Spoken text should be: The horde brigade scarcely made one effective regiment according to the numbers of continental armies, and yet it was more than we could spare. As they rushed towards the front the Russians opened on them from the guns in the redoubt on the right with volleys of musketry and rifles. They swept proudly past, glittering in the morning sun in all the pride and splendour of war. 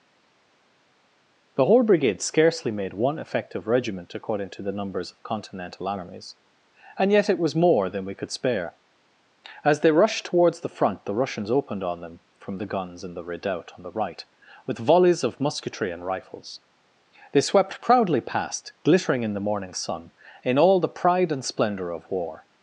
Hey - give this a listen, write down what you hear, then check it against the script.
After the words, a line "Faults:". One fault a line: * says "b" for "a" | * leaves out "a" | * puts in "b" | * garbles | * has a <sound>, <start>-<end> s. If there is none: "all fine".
The horde brigade scarcely made one effective regiment according to the numbers of continental armies, and yet it was more than we could spare. As they rushed towards the front the Russians opened on them from the guns in the redoubt on the right with volleys of musketry and rifles. They swept proudly past, glittering in the morning sun in all the pride and splendour of war.
Faults:
all fine